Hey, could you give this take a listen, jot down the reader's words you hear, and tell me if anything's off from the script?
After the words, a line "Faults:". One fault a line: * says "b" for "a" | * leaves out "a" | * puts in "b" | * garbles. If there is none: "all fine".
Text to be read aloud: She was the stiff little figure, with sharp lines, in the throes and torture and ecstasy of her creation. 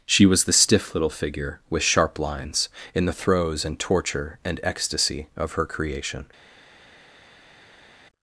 She was the stiff little figure, with sharp lines, in the throes and torture and ecstasy of her creation.
Faults:
all fine